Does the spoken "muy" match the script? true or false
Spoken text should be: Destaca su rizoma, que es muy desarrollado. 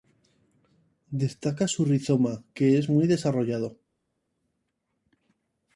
true